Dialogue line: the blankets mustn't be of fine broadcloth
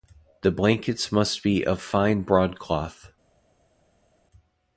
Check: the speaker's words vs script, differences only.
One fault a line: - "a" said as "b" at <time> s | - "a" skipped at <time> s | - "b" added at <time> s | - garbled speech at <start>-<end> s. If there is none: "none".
- "mustn't" said as "must" at 1.1 s